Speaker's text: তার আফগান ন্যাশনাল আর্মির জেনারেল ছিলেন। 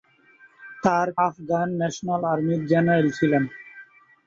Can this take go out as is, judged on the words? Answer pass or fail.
pass